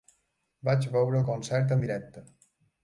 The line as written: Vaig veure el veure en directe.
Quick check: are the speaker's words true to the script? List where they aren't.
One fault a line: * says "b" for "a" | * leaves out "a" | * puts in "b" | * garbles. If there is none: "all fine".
* says "concert" for "veure"